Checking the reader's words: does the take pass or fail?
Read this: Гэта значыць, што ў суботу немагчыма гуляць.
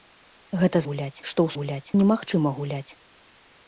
fail